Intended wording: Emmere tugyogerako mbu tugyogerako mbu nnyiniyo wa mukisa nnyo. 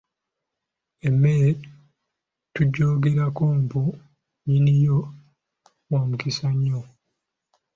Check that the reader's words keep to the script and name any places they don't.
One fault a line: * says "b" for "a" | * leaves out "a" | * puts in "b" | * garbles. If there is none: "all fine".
* leaves out "tugyogerako mbu"